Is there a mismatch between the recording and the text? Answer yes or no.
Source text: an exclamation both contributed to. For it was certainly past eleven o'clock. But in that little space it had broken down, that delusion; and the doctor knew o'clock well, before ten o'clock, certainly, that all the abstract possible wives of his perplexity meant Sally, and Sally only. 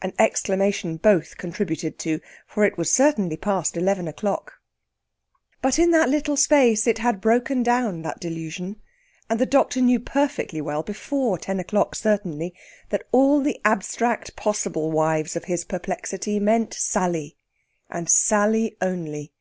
yes